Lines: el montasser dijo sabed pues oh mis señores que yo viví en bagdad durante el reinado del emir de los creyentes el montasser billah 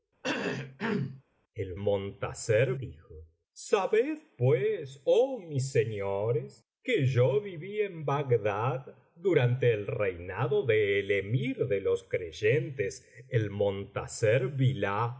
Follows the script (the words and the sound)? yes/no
no